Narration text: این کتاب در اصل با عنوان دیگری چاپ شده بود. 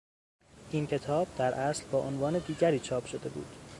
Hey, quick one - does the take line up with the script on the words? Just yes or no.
yes